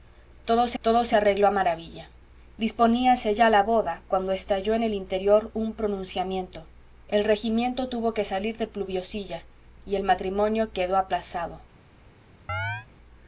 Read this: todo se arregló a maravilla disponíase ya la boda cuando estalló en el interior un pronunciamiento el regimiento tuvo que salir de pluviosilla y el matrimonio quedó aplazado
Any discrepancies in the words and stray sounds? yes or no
yes